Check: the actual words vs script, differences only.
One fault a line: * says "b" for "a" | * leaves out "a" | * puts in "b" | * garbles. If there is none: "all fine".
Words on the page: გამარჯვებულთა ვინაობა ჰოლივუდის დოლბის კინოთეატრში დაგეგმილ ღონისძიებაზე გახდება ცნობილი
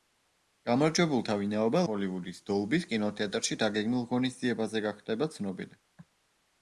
all fine